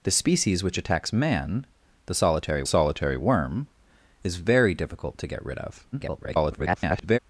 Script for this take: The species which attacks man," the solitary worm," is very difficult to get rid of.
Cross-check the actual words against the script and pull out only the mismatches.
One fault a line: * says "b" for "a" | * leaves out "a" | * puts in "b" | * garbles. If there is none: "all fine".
* puts in "solitary"
* garbles